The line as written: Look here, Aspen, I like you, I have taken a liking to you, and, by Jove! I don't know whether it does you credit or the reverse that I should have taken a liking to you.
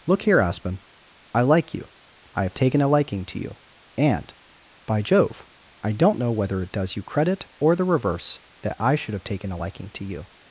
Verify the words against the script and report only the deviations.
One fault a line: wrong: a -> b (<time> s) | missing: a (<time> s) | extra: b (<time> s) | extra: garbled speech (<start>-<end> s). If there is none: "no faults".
no faults